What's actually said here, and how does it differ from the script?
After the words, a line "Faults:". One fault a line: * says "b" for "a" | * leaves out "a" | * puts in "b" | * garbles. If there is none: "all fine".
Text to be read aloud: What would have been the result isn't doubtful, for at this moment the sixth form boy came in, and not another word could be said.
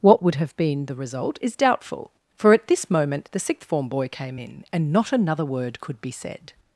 What would have been the result is doubtful, for at this moment the sixth form boy came in, and not another word could be said.
Faults:
* says "is" for "isn't"